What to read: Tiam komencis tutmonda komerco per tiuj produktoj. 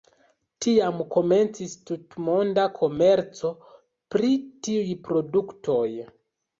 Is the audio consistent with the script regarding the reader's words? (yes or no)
no